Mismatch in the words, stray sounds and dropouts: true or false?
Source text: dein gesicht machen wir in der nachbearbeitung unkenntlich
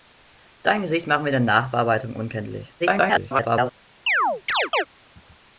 true